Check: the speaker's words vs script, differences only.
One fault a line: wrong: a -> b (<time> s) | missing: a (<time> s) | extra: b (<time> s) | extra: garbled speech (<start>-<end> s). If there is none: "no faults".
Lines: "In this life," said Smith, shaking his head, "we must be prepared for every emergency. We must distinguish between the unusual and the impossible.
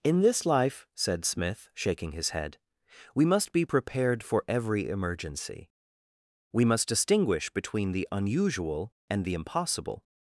no faults